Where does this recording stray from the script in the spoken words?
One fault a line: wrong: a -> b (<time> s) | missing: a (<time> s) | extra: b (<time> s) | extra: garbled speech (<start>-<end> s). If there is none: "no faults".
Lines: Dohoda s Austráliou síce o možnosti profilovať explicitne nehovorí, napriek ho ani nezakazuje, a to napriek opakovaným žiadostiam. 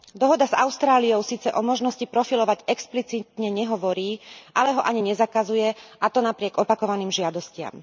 wrong: napriek -> ale (4.5 s)